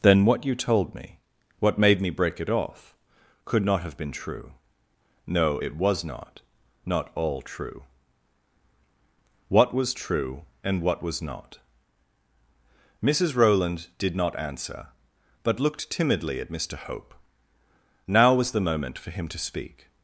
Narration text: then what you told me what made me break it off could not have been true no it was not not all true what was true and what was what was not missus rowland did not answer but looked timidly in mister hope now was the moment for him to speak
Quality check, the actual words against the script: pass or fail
fail